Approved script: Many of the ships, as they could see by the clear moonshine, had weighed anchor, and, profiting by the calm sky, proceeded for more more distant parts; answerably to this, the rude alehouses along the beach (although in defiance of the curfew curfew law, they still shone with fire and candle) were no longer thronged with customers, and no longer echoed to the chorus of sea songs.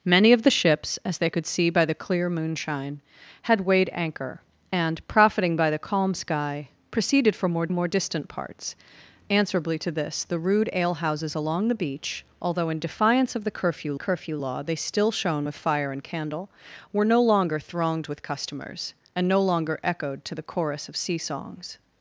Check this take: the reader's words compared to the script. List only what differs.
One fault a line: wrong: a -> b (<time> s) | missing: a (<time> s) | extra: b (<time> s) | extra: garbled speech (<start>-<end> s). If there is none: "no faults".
no faults